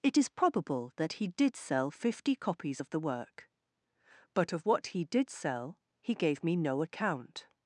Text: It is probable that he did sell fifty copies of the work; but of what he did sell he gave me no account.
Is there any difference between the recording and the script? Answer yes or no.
no